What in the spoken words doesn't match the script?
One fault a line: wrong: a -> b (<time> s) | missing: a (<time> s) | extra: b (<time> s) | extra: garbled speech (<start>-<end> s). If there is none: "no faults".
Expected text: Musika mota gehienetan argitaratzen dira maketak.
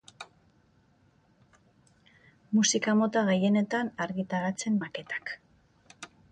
missing: dira (4.8 s)